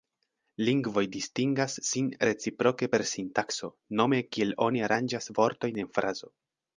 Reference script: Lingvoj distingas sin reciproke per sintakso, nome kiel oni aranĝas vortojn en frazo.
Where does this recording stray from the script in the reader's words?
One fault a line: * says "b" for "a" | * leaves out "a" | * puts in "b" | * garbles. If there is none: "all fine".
all fine